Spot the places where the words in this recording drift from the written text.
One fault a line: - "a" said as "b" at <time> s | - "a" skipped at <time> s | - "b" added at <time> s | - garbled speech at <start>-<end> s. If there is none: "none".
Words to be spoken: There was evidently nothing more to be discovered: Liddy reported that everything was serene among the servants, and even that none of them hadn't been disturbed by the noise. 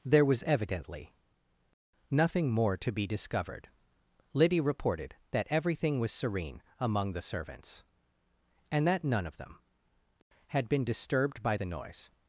- "even" skipped at 8.9 s
- "hadn't" said as "had" at 10.5 s